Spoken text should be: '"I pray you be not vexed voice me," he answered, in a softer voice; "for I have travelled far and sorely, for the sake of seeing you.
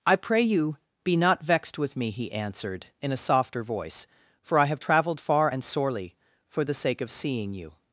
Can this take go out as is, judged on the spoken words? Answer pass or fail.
fail